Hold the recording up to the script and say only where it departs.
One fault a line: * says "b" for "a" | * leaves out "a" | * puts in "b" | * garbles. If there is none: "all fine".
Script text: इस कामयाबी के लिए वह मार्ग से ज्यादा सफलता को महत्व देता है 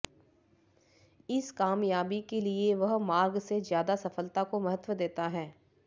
all fine